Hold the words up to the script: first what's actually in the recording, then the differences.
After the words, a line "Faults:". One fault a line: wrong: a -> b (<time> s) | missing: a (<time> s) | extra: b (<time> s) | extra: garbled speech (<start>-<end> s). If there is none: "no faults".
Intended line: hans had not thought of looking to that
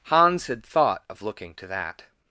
hans had thought of looking to that
Faults:
missing: not (0.7 s)